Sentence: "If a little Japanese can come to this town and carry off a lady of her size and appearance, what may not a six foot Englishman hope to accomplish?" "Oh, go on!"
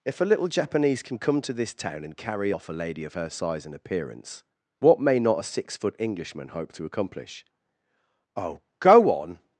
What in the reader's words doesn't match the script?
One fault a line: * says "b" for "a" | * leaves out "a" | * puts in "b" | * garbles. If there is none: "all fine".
all fine